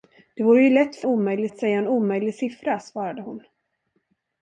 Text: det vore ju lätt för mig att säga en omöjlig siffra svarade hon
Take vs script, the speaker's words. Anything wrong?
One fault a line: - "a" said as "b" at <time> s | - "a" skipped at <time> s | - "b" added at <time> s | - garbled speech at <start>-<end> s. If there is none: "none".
- "mig" said as "omöjlig" at 1.0 s